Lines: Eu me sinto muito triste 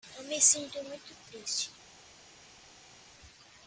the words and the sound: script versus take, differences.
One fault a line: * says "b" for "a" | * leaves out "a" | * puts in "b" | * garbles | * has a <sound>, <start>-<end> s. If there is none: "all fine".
all fine